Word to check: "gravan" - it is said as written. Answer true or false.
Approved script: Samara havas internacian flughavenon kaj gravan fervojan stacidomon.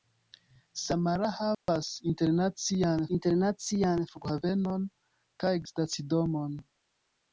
false